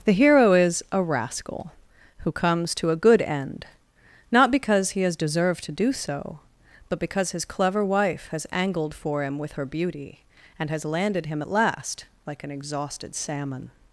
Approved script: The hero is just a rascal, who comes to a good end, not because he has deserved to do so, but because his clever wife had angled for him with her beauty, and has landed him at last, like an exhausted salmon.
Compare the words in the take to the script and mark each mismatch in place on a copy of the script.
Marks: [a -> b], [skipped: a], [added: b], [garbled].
The hero is [skipped: just] a rascal, who comes to a good end, not because he has deserved to do so, but because his clever wife [had -> has] angled for him with her beauty, and has landed him at last, like an exhausted salmon.